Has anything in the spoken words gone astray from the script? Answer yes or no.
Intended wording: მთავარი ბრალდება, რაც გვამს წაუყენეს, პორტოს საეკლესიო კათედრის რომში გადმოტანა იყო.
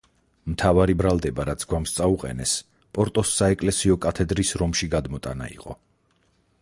no